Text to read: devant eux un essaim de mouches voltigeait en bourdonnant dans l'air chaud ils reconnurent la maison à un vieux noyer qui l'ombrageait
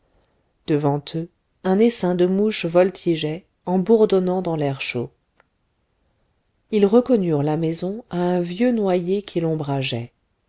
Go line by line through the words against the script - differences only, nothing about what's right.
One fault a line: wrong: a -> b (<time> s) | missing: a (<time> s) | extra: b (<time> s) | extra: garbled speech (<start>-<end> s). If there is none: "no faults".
no faults